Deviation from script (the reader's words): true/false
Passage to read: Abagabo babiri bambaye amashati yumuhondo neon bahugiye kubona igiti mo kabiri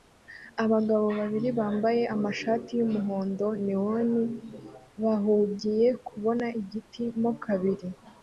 false